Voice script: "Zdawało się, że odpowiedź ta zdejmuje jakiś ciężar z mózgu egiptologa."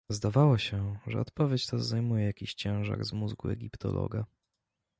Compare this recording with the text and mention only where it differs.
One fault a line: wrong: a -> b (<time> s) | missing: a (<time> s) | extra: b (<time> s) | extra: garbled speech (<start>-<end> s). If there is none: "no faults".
no faults